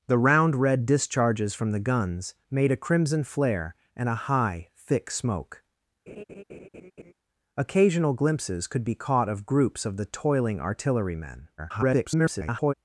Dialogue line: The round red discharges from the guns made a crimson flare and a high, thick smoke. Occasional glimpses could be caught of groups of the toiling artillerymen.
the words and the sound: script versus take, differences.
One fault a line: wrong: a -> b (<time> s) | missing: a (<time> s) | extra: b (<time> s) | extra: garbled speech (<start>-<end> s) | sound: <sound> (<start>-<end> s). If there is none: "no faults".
sound: laugh (6.1-7.1 s)
extra: garbled speech (11.6-12.7 s)